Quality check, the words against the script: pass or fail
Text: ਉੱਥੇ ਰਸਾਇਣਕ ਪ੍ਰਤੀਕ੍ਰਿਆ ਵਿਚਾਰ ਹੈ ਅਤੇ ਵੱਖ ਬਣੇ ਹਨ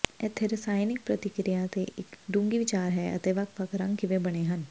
fail